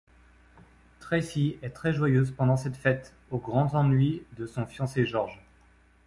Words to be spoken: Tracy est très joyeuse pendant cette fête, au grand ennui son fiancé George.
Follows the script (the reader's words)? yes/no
no